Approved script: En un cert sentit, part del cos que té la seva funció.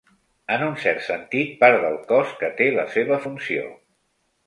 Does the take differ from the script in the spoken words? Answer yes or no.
no